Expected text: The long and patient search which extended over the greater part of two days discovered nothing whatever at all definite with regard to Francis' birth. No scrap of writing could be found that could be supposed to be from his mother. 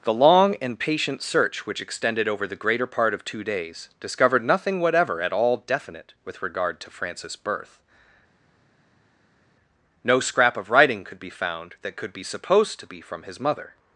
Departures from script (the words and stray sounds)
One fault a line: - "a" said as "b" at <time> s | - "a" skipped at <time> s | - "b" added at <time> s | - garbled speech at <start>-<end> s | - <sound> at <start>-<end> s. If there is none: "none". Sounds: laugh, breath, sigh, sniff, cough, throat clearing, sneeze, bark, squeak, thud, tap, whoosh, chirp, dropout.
none